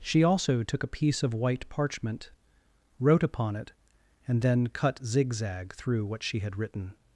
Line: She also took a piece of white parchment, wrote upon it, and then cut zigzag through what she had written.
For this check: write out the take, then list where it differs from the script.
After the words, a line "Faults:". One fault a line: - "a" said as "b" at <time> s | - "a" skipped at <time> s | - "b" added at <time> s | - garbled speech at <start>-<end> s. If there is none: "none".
She also took a piece of white parchment, wrote upon it, and then cut zigzag through what she had written.
Faults:
none